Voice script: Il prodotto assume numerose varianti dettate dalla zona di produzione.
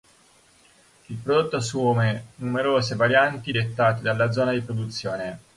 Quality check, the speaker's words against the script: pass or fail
pass